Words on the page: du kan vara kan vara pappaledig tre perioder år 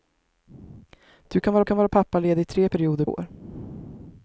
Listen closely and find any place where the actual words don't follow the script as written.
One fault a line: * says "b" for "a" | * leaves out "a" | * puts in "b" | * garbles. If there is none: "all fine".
all fine